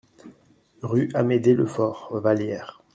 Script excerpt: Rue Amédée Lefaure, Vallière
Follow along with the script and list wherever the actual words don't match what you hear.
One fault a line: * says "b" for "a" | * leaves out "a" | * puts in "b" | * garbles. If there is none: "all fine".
all fine